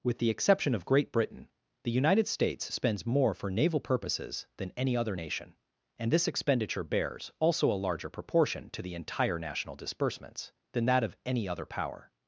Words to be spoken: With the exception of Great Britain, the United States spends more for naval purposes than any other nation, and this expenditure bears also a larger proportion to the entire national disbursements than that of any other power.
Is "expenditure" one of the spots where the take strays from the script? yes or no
no